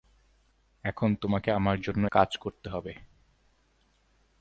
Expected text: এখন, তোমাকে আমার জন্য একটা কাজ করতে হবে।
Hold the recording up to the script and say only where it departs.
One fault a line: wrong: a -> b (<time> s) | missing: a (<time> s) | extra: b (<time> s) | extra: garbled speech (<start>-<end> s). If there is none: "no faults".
missing: একটা (2.1 s)